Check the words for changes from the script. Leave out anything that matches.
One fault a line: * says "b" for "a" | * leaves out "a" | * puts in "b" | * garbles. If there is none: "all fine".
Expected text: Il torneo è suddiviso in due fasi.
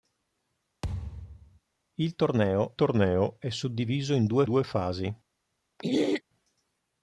* puts in "torneo"
* puts in "due"